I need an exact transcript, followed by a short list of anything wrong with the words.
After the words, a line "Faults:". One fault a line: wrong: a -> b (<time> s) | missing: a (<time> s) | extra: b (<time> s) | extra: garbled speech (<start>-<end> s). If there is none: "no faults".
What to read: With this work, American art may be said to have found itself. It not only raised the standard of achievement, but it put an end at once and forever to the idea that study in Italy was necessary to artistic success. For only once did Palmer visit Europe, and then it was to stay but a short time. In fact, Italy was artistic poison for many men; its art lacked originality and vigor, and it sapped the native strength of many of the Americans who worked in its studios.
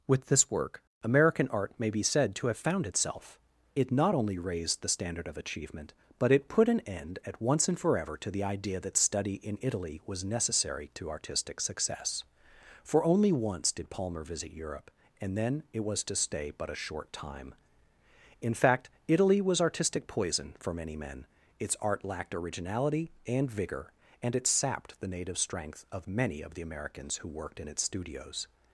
With this work, American art may be said to have found itself. It not only raised the standard of achievement, but it put an end at once and forever to the idea that study in Italy was necessary to artistic success. For only once did Palmer visit Europe, and then it was to stay but a short time. In fact, Italy was artistic poison for many men; its art lacked originality and vigor, and it sapped the native strength of many of the Americans who worked in its studios.
Faults:
no faults